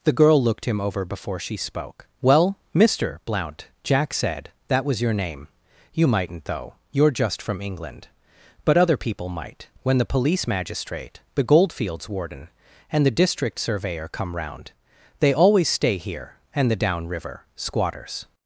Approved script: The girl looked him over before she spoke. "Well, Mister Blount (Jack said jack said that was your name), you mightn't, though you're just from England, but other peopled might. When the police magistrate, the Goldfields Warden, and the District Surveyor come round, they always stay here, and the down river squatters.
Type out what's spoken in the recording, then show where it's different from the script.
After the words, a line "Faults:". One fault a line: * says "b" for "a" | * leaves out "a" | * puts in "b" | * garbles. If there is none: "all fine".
The girl looked him over before she spoke. "Well, Mister Blount (Jack said that was your name), you mightn't, though you're just from England, but other people might. When the police magistrate, the Goldfields Warden, and the District Surveyor come round, they always stay here, and the down river squatters.
Faults:
* leaves out "jack said"
* says "people" for "peopled"